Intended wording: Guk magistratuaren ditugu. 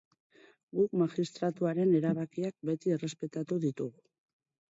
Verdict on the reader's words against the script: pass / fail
fail